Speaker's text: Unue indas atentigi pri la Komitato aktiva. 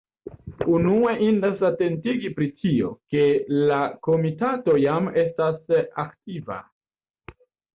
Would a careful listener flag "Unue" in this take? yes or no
no